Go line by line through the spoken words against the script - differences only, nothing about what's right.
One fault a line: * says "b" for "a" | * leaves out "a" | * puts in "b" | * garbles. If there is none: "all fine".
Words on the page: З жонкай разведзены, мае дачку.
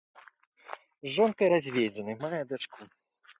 all fine